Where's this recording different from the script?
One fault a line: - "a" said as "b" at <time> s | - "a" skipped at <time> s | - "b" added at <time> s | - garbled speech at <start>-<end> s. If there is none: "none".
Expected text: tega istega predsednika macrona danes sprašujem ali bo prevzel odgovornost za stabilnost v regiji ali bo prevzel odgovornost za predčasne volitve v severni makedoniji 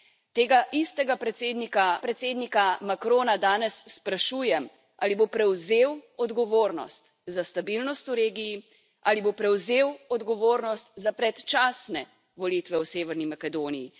- "predsednika" added at 2.0 s